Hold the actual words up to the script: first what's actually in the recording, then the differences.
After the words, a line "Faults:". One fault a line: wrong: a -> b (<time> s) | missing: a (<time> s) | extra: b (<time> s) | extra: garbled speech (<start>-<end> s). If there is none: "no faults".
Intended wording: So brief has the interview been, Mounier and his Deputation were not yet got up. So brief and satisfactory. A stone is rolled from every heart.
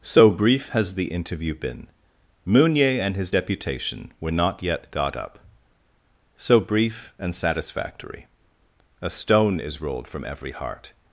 So brief has the interview been, Mounier and his Deputation were not yet got up. So brief and satisfactory. A stone is rolled from every heart.
Faults:
no faults